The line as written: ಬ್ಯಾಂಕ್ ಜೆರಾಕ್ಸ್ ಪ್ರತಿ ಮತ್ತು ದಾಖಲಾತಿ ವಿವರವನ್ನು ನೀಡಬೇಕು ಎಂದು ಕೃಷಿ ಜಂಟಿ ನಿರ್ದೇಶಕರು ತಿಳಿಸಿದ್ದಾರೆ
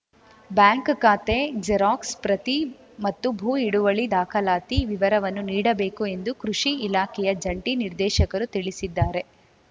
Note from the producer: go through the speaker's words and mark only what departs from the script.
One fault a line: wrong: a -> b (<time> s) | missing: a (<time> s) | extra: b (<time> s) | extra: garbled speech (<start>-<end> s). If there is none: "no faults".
extra: ಖಾತೆ (1.0 s)
extra: ಭೂ ಹಿಡುವಳಿ (3.3 s)
extra: ಇಲಾಖೆಯ (6.9 s)